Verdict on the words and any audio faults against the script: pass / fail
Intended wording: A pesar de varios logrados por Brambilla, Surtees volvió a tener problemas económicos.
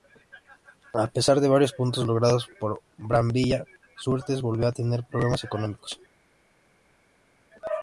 fail